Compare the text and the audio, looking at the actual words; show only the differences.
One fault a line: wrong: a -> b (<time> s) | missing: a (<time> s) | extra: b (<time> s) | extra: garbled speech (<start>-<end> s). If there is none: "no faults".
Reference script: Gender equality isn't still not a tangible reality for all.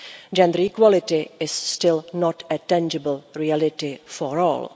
wrong: isn't -> is (1.4 s)